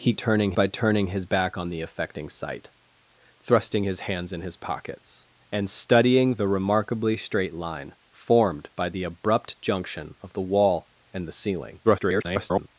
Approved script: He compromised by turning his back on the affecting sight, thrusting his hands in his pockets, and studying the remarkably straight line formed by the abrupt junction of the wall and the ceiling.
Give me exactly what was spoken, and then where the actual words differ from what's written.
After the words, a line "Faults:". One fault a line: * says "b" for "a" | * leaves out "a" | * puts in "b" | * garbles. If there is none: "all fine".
He turning by turning his back on the affecting sight, thrusting his hands in his pockets, and studying the remarkably straight line formed by the abrupt junction of the wall and the ceiling. [garbled]
Faults:
* says "turning" for "compromised"
* garbles